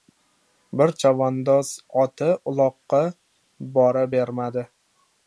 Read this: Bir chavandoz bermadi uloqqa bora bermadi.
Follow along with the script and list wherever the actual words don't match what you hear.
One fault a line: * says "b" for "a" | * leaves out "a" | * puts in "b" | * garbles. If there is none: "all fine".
* says "oti" for "bermadi"